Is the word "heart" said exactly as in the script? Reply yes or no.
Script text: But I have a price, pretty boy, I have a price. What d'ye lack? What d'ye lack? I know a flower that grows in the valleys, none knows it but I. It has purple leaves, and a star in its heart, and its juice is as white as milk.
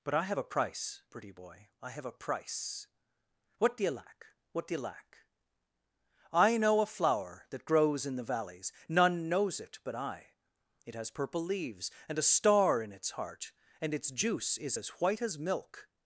yes